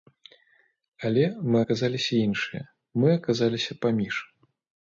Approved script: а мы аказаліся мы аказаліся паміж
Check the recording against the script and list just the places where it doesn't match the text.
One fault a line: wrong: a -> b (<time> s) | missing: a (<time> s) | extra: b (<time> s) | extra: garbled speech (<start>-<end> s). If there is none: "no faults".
wrong: а -> але (1.1 s)
extra: іншыя (2.3 s)